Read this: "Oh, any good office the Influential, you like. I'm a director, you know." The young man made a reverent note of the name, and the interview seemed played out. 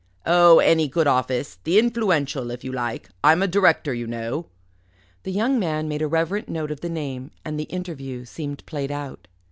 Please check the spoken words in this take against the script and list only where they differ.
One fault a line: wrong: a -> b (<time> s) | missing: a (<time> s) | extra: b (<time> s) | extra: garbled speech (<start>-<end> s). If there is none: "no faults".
extra: if (2.5 s)